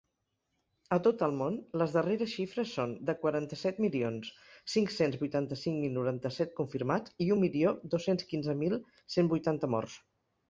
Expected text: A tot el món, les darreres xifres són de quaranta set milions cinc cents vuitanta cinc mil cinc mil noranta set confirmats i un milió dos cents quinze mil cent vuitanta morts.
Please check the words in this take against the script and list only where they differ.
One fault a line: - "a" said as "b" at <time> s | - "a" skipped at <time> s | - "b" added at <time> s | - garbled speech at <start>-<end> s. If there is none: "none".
- "cinc mil" skipped at 6.0 s